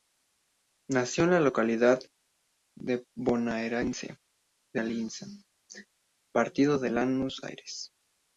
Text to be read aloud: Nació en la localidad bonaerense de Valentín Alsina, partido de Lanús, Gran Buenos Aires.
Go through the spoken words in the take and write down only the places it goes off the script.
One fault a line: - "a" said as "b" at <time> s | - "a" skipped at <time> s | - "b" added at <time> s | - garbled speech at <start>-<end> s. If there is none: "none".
- "Valentín" skipped at 4.8 s
- "Gran Buenos" skipped at 7.4 s